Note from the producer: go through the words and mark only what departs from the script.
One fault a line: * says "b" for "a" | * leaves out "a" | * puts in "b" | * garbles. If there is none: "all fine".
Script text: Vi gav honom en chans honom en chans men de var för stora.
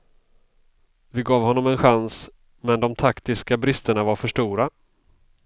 * says "men de taktiska bristerna" for "honom en chans men de"